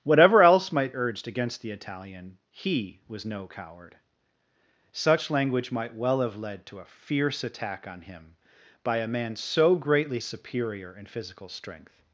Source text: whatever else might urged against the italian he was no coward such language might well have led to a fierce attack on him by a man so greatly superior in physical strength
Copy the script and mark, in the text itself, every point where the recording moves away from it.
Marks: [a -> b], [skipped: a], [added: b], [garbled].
whatever else might urged against the italian he was no coward such language might well have led to a fierce attack on him by a man so greatly superior in physical strength